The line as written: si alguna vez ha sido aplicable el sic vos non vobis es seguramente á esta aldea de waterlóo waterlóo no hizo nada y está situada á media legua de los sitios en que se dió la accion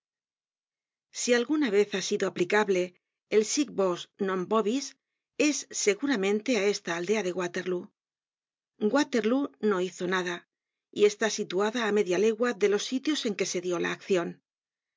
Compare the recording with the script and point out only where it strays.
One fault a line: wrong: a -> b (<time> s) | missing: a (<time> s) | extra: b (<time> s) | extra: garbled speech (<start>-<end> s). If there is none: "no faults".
no faults